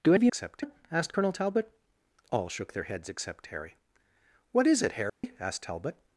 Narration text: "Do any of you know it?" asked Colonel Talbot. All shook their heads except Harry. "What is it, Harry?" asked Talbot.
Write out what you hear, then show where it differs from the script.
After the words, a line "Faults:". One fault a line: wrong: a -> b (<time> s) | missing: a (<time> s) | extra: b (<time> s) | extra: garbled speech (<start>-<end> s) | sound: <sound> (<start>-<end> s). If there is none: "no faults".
"Do of you except it?" asked Colonel Talbot. All shook their heads except Harry. "What is it, Harry?" asked Talbot.
Faults:
missing: any (0.1 s)
wrong: know -> except (0.3 s)
sound: dropout (5.1-5.2 s)